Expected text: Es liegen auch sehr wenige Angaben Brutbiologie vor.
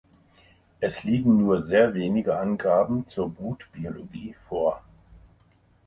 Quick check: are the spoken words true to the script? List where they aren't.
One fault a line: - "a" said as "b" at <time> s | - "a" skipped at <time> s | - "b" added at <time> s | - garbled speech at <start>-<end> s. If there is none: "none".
- "auch" said as "nur" at 1.4 s
- "zur" added at 3.0 s